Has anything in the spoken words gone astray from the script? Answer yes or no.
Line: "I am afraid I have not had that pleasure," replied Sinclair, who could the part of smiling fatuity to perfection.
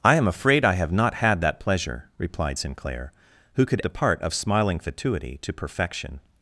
no